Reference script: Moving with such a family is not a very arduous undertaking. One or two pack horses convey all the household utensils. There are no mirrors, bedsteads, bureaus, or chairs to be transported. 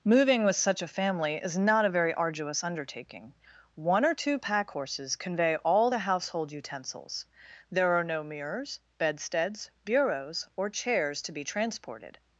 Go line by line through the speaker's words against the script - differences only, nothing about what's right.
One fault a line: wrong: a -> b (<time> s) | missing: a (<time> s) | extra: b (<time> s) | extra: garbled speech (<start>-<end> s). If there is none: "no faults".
no faults